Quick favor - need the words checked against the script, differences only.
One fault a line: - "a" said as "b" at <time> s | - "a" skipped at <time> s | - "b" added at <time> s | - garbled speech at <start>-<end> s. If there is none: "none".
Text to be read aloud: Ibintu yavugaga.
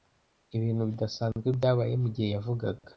- "bidasanzwe byabaye mugihe" added at 0.9 s